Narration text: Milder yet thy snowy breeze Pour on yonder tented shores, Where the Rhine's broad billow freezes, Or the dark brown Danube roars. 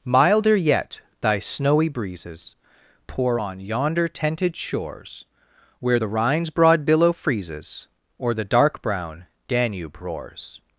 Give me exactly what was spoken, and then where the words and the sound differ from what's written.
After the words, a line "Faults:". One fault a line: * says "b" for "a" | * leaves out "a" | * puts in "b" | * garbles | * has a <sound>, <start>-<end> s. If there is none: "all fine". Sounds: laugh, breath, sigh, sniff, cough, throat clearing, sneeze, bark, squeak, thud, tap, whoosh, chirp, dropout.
Milder yet thy snowy breezes Pour on yonder tented shores, Where the Rhine's broad billow freezes, Or the dark brown Danube roars.
Faults:
* says "breezes" for "breeze"